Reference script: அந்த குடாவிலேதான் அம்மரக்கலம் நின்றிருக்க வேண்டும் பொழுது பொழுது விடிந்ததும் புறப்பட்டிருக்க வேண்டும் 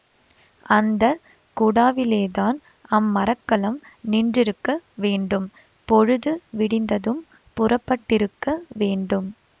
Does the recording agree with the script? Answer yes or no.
no